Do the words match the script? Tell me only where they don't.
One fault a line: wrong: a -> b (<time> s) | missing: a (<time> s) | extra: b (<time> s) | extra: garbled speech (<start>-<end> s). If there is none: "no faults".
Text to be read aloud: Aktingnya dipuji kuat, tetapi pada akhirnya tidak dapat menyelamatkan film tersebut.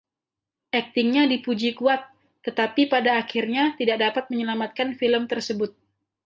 no faults